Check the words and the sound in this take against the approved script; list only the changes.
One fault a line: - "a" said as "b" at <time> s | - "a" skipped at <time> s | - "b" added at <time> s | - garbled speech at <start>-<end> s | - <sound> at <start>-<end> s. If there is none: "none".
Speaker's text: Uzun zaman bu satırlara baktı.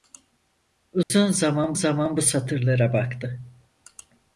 - dropout at 1.0-1.1 s
- "zaman" added at 1.7 s